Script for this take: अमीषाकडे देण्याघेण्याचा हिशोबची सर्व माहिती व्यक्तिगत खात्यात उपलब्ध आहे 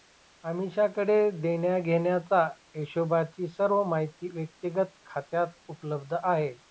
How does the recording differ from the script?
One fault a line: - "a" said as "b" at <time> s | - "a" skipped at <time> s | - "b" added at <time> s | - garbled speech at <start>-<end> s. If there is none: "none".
none